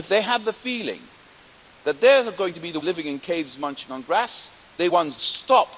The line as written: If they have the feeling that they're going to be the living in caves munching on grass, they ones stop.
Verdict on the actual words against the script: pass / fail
pass